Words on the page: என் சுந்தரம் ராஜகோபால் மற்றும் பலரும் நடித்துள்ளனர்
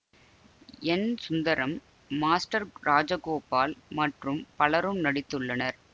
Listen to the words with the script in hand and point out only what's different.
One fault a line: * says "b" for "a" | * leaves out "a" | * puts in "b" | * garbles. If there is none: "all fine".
* puts in "மாஸ்டர்"